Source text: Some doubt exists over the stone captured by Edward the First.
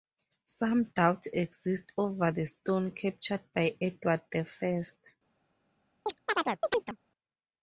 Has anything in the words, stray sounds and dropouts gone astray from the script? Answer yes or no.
yes